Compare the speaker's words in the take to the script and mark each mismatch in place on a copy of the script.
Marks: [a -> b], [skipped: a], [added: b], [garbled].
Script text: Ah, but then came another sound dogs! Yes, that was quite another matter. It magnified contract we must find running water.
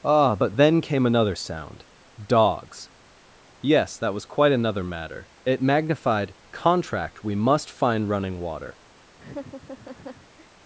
Ah, but then came another sound dogs! Yes, that was quite another matter. It magnified contract we must find running water.